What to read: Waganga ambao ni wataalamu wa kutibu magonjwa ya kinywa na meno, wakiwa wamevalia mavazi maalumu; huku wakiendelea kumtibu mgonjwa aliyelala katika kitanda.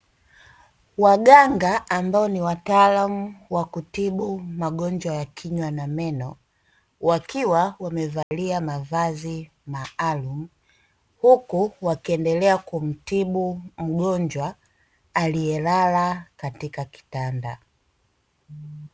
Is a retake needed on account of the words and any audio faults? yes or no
yes